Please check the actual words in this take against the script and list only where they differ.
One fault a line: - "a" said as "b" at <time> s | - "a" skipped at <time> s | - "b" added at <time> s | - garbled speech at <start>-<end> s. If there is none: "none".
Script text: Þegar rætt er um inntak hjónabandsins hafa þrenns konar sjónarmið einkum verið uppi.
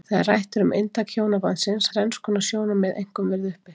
- "hafa" skipped at 1.9 s